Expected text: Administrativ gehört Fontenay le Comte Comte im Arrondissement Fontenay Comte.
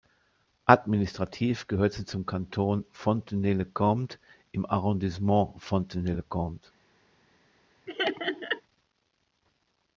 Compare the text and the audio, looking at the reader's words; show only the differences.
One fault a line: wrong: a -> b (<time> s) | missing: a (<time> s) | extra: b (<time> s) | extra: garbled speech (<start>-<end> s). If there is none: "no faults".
extra: sie zum Kanton (1.9 s)
missing: Comte (4.2 s)
extra: le (6.1 s)